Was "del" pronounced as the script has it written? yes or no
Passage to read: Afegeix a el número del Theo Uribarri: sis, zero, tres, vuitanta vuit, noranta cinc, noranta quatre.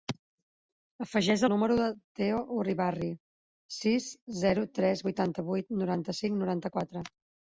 yes